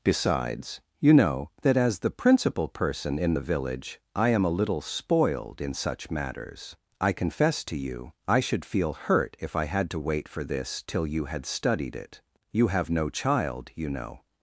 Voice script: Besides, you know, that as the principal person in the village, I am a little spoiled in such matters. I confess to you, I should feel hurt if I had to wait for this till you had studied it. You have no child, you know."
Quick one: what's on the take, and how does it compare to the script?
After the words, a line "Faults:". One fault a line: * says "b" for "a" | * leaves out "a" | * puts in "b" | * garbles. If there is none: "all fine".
Besides, you know, that as the principal person in the village, I am a little spoiled in such matters. I confess to you, I should feel hurt if I had to wait for this till you had studied it. You have no child, you know."
Faults:
all fine